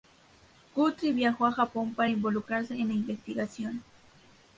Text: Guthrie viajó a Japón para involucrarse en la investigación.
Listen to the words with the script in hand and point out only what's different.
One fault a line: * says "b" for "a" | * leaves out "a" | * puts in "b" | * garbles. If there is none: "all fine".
all fine